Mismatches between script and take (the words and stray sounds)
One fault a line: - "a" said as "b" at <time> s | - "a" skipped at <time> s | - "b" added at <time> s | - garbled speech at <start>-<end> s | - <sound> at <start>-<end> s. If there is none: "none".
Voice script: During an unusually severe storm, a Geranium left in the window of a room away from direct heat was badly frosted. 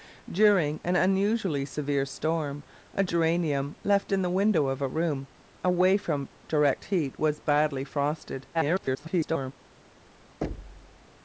- garbled speech at 8.5-9.5 s
- thud at 10.4-11.1 s